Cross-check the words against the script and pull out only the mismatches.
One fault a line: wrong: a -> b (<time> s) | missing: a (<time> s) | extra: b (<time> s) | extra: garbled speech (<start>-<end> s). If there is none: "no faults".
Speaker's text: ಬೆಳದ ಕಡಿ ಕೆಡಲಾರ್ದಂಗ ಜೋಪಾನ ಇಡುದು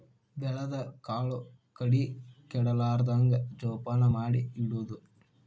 extra: ಕಾಳು (1.0 s)
extra: ಮಾಡಿ (4.1 s)